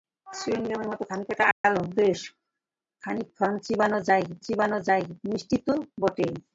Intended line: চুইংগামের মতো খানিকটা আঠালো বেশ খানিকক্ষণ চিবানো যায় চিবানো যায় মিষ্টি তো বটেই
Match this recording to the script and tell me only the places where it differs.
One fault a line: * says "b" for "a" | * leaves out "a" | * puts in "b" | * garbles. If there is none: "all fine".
all fine